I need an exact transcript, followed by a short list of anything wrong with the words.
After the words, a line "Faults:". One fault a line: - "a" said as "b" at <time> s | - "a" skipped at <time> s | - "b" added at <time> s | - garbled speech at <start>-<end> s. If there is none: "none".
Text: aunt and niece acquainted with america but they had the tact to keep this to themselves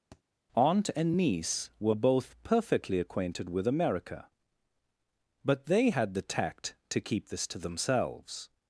aunt and niece were both perfectly acquainted with america but they had the tact to keep this to themselves
Faults:
- "were both perfectly" added at 1.8 s